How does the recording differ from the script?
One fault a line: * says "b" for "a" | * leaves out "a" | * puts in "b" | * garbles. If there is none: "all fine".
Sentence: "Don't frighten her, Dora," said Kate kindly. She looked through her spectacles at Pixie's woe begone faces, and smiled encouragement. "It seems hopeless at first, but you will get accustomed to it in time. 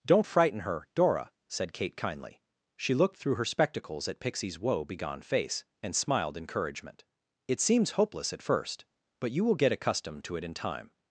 * says "face" for "faces"